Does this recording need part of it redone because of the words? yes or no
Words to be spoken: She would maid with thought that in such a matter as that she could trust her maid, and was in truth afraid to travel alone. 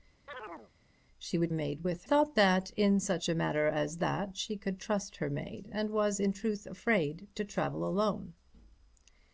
no